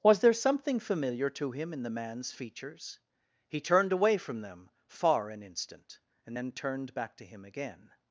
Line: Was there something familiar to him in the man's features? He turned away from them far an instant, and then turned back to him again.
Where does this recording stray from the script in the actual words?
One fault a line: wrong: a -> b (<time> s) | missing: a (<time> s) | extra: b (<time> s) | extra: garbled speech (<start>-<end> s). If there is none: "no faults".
no faults